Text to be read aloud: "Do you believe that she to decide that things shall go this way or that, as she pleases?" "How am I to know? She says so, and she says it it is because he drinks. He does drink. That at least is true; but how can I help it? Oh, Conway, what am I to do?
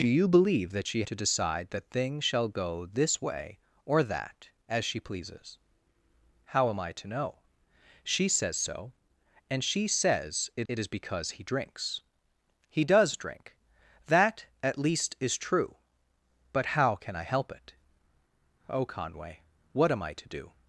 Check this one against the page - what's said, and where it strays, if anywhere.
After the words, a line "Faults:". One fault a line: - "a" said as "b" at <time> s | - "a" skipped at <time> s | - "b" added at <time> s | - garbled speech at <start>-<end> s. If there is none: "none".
"Do you believe that she to decide that things shall go this way or that, as she pleases?" "How am I to know? She says so, and she says it it is because he drinks. He does drink. That at least is true; but how can I help it? Oh, Conway, what am I to do?
Faults:
none